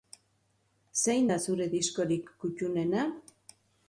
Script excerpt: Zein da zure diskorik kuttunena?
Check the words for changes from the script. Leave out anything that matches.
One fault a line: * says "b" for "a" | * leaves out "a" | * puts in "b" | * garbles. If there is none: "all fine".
all fine